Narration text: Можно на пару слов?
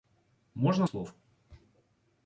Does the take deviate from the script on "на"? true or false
true